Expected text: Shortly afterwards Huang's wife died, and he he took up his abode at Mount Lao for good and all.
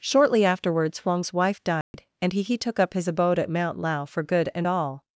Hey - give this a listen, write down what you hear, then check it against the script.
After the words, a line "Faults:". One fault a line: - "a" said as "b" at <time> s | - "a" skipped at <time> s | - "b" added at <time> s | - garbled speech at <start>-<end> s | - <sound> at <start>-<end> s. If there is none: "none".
Shortly afterwards Huang's wife died, and he he took up his abode at Mount Lao for good and all.
Faults:
- dropout at 1.8-1.9 s